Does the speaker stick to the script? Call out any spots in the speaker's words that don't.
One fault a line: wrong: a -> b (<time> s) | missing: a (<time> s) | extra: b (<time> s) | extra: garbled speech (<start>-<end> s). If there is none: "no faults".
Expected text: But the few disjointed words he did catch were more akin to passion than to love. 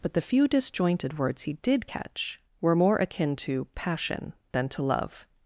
no faults